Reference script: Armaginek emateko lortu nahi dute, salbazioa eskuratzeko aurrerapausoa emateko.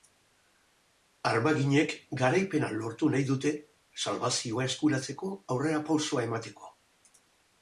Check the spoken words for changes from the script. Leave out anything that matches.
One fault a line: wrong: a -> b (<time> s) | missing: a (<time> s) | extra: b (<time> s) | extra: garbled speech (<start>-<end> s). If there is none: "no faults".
wrong: emateko -> garaipena (2.2 s)